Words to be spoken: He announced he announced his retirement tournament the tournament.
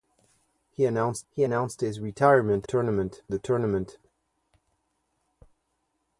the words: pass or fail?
pass